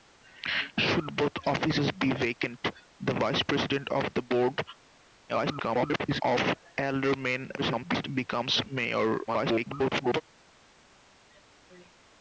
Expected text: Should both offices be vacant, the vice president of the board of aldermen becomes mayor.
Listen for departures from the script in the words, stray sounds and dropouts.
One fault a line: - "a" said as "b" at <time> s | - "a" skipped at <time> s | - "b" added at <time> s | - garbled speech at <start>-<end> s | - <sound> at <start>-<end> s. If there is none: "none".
- garbled speech at 5.3-6.2 s
- garbled speech at 7.6-8.1 s
- garbled speech at 9.3-10.2 s